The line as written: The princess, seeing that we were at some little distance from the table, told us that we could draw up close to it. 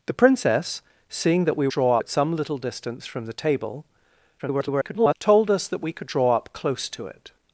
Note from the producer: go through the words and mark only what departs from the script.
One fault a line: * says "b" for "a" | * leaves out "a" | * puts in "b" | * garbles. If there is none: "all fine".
* says "draw" for "were"
* garbles